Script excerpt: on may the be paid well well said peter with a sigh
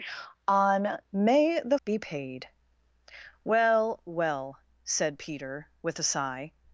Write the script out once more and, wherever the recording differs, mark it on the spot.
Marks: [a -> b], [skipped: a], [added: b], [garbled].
on may the be paid well well said peter with a sigh